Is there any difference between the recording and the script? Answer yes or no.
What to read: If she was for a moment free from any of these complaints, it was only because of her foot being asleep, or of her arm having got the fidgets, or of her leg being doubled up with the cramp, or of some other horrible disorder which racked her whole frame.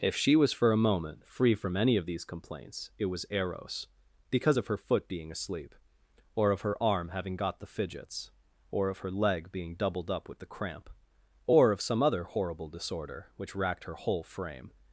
yes